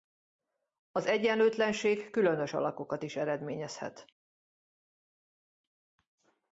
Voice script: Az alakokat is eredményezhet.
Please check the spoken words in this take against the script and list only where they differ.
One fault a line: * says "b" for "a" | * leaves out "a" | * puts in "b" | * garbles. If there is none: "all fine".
* puts in "egyenlőtlenség különös"